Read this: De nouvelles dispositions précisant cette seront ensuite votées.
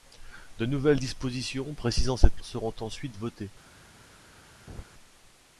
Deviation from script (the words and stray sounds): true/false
true